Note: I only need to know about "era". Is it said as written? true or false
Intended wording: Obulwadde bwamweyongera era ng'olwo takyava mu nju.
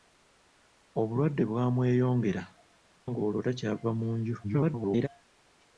false